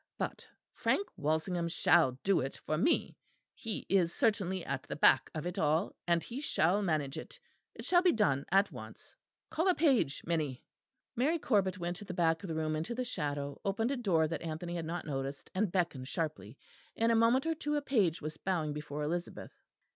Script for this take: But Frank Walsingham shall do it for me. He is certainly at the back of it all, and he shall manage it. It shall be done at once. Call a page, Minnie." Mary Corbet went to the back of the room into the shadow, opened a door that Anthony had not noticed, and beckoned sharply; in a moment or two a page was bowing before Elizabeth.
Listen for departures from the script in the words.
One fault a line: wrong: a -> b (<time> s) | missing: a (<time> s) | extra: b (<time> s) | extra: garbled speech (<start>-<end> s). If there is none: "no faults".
no faults